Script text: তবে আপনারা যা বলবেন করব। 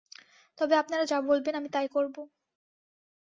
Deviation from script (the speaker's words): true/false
true